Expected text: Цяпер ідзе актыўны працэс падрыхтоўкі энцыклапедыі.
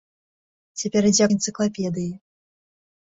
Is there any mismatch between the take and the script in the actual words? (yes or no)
yes